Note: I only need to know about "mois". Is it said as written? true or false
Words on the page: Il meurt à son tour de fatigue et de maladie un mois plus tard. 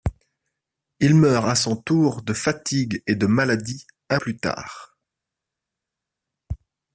false